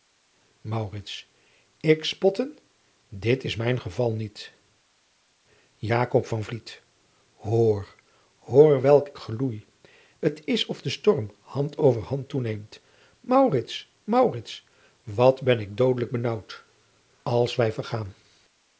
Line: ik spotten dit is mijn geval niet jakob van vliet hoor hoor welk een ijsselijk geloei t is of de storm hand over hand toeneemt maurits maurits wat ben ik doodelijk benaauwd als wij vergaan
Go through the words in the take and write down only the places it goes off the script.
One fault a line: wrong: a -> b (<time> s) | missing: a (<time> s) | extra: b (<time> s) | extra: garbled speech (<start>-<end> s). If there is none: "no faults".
missing: een ijsselijk (9.1 s)